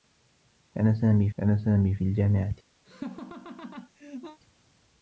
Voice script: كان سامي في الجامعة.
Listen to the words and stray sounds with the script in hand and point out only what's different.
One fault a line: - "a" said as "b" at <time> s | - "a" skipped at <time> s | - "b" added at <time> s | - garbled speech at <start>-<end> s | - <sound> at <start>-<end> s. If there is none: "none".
- "كان سامي" added at 1.4 s
- laugh at 2.8-4.4 s